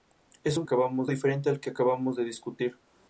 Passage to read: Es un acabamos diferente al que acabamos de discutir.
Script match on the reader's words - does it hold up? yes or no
yes